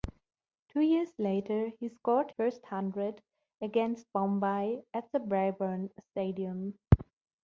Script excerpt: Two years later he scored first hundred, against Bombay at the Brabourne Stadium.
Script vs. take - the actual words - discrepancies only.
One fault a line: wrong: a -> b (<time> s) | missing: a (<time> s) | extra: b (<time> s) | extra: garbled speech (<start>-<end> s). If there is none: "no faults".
no faults